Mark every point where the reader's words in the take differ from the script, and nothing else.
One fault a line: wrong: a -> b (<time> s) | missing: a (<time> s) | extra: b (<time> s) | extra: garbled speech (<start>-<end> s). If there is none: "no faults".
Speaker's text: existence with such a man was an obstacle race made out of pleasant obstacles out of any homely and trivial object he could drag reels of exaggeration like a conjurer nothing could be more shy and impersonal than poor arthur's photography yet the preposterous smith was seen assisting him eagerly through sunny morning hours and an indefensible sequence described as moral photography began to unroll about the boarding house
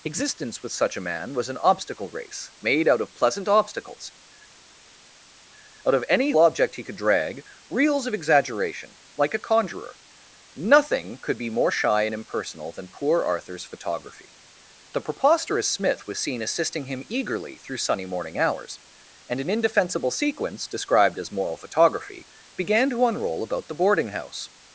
missing: homely and trivial (6.3 s)
missing: yet (14.4 s)